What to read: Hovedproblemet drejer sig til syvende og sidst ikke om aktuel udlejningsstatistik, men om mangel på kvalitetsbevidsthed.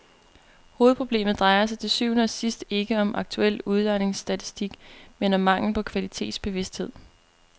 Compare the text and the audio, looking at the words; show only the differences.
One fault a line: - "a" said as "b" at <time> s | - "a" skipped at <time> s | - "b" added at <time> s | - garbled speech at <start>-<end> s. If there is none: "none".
none